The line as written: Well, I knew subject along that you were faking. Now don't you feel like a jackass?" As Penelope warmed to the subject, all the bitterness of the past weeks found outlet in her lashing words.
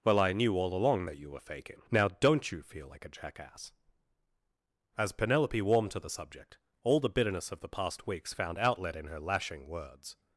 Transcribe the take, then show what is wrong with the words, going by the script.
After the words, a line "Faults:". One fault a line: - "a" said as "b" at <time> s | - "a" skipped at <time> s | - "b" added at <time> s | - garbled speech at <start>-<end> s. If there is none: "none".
Well, I knew all along that you were faking. Now don't you feel like a jackass?" As Penelope warmed to the subject, all the bitterness of the past weeks found outlet in her lashing words.
Faults:
- "subject" said as "all" at 0.6 s